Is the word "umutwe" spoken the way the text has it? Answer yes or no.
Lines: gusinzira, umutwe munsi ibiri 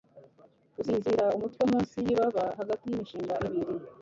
yes